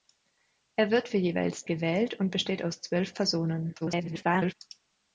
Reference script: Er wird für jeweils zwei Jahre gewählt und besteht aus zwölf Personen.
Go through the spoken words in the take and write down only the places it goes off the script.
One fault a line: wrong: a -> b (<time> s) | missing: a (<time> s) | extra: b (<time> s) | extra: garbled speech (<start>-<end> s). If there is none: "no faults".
missing: zwei Jahre (1.7 s)
extra: garbled speech (3.8-4.5 s)